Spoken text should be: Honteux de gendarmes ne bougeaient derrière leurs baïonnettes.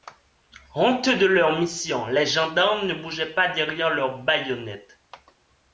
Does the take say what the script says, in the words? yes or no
no